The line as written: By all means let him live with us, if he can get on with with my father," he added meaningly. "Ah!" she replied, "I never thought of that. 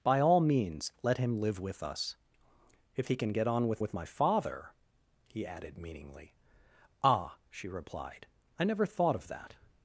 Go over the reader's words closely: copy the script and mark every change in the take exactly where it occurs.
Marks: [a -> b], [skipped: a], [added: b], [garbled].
By all means let him live with us, if he can get on with with my father," he added meaningly. "Ah!" she replied, "I never thought of that.